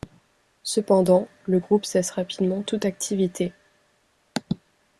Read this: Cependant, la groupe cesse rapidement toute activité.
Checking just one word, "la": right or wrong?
wrong